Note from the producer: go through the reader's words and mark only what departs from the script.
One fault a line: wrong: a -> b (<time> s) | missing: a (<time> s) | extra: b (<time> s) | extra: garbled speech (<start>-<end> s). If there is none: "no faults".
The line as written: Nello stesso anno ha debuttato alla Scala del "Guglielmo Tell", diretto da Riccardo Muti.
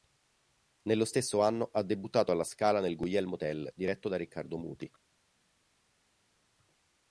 wrong: del -> nel (2.8 s)